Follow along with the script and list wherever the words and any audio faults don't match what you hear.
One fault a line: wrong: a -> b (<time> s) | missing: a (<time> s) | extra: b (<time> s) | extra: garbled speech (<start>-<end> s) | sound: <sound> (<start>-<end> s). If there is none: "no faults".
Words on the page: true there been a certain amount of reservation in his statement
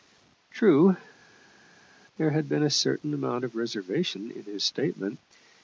extra: had (2.3 s)